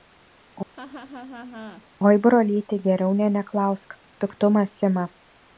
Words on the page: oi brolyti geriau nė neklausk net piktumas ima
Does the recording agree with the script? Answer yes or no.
no